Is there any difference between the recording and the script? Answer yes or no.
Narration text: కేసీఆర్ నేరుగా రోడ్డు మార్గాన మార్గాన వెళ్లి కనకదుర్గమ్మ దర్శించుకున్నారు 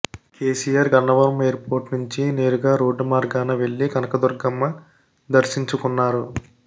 yes